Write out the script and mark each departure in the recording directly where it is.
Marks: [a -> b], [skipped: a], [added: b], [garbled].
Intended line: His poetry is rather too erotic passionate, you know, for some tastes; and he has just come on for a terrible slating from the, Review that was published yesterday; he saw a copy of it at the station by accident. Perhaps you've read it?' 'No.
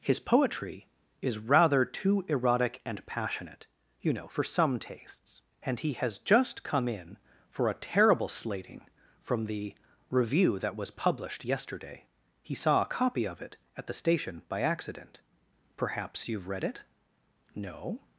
His poetry is rather too erotic [added: and] passionate, you know, for some tastes; and he has just come [on -> in] for a terrible slating from the, Review that was published yesterday; he saw a copy of it at the station by accident. Perhaps you've read it?' 'No.